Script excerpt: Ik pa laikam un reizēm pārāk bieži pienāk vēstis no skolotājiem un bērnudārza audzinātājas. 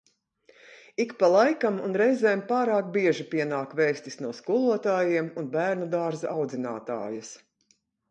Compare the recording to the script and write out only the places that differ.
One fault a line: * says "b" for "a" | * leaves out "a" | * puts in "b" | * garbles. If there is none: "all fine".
all fine